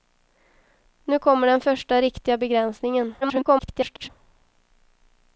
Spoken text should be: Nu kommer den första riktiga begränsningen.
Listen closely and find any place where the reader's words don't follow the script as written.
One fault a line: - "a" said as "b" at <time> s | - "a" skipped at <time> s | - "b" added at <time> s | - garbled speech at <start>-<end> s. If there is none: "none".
- garbled speech at 3.2-4.1 s